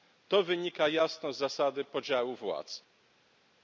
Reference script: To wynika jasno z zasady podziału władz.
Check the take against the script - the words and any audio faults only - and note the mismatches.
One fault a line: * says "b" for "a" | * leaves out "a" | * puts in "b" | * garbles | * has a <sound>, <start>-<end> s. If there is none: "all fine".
all fine